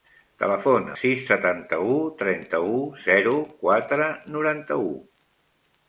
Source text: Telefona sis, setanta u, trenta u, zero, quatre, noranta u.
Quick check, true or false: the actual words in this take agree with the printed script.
true